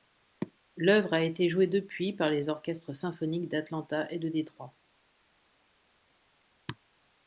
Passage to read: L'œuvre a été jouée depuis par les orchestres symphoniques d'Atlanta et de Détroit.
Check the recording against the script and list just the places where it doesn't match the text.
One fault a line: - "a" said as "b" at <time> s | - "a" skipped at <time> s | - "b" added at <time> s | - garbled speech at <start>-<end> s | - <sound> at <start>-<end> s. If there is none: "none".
none